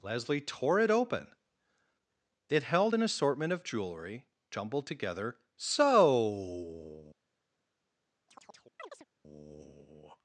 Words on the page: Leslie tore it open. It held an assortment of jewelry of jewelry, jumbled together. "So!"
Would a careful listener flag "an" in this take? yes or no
no